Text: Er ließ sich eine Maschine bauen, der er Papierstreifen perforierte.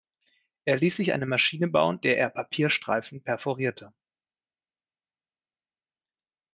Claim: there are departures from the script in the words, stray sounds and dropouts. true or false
false